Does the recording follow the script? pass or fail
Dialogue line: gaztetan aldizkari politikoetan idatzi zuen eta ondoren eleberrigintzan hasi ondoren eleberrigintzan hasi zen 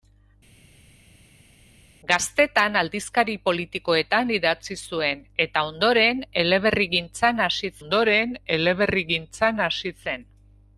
pass